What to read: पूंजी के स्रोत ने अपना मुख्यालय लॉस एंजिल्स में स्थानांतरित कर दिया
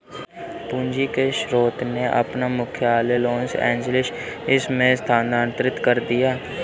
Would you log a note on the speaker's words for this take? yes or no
no